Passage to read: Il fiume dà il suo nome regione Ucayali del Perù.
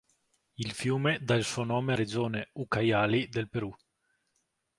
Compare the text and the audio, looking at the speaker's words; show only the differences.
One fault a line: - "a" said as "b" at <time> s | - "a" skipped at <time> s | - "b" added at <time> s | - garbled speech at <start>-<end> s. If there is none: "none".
none